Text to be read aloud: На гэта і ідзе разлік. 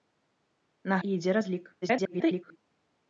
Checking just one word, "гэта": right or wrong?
wrong